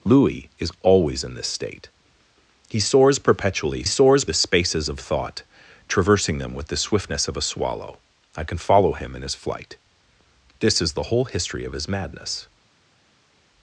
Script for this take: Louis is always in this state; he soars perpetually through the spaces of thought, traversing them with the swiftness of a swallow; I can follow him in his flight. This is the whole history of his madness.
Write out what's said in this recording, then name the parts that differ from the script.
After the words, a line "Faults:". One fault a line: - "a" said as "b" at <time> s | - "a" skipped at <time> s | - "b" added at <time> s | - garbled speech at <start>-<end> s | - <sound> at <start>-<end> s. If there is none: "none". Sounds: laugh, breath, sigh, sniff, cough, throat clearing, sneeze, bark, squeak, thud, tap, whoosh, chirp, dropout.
Louis is always in this state; he soars perpetually soars the spaces of thought, traversing them with the swiftness of a swallow; I can follow him in his flight. This is the whole history of his madness.
Faults:
- "through" said as "soars" at 3.8 s